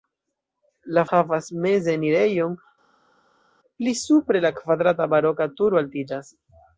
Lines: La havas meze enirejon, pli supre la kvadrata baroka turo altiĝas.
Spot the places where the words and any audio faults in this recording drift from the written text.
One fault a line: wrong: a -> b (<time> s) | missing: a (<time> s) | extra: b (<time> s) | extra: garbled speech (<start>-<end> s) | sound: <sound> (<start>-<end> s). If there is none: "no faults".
no faults